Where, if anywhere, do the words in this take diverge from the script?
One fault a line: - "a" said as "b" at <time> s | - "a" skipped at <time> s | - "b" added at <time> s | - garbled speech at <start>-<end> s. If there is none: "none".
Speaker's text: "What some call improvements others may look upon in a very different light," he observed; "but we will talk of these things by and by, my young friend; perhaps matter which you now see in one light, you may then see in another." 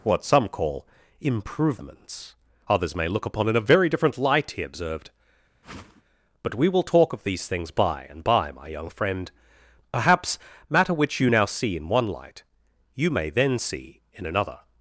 none